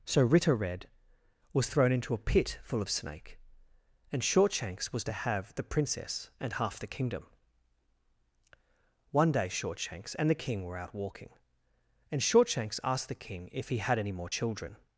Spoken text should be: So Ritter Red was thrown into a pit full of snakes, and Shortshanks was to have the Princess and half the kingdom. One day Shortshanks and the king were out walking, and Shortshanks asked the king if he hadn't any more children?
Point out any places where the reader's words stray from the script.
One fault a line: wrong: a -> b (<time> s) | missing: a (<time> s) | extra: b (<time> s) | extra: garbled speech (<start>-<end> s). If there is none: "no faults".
wrong: snakes -> snake (2.9 s)
wrong: hadn't -> had (13.8 s)